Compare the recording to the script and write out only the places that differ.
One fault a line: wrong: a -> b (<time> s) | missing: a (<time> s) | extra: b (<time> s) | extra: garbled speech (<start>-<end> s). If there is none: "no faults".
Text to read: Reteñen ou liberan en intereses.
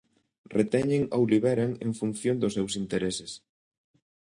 extra: función dos seus (2.0 s)